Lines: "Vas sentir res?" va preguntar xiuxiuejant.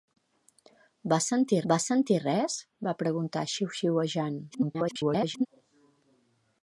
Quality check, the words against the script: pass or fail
fail